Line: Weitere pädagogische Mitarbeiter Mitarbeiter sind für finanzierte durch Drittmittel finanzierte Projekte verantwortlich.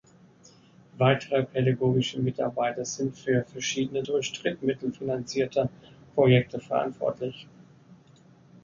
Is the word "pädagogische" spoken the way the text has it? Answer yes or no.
yes